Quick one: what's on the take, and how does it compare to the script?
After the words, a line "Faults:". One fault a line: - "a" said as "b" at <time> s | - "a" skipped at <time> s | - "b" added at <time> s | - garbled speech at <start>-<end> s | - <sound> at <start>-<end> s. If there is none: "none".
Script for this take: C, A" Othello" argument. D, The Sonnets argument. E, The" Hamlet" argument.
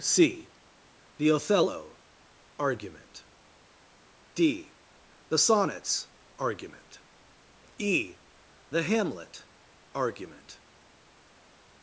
C, The" Othello" argument. D, The Sonnets argument. E, The" Hamlet" argument.
Faults:
- "A" said as "The" at 1.2 s